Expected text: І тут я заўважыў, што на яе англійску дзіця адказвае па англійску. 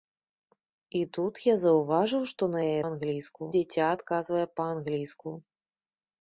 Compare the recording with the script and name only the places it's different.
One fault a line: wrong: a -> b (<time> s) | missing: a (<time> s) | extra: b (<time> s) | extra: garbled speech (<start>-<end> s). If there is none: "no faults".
no faults